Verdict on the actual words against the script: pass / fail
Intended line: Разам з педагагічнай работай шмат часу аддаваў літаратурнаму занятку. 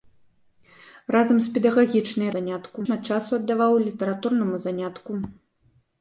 fail